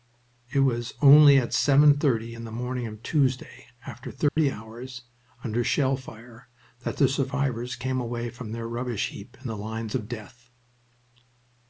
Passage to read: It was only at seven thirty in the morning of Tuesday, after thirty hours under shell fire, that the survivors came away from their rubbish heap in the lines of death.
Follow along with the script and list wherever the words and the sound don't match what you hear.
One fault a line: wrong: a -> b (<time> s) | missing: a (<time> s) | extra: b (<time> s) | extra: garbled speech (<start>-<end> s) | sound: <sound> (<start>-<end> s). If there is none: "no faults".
sound: dropout (4.3-4.4 s)